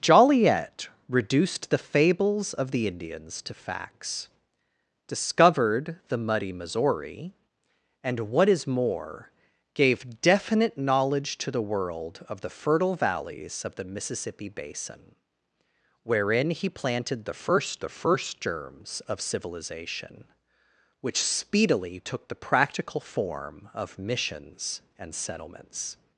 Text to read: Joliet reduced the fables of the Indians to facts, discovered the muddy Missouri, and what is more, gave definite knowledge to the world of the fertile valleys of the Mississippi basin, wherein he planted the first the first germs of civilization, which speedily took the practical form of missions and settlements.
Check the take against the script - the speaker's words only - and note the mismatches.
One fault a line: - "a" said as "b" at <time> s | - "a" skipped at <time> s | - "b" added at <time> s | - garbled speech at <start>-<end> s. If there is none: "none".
none